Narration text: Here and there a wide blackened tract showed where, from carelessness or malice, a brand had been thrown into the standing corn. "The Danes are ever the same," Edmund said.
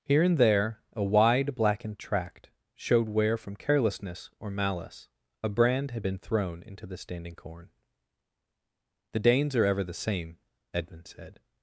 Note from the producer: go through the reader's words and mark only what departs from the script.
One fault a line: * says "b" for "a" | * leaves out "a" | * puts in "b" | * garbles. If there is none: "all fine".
all fine